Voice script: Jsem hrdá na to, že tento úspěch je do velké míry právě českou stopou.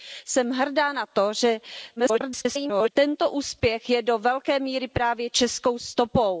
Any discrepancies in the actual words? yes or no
yes